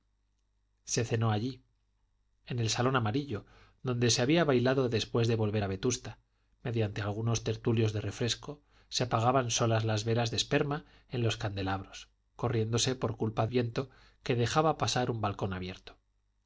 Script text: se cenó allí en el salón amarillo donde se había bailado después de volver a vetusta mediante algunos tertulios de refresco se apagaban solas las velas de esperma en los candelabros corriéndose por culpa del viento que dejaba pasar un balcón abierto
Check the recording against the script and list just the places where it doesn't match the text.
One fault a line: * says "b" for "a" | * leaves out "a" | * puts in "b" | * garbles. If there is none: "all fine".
* leaves out "del"